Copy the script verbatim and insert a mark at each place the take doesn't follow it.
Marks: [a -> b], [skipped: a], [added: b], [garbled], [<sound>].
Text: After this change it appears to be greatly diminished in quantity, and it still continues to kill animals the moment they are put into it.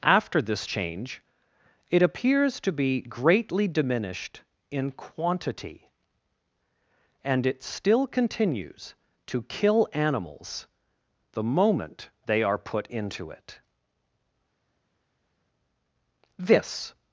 After this change it appears to be greatly diminished in quantity, and it still continues to kill animals the moment they are put into it. [added: This]